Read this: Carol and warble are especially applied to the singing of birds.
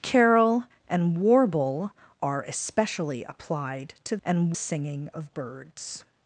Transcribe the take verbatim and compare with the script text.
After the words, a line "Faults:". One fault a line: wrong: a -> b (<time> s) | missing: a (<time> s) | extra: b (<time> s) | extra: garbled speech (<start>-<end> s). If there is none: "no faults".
Carol and warble are especially applied to and singing of birds.
Faults:
wrong: the -> and (4.2 s)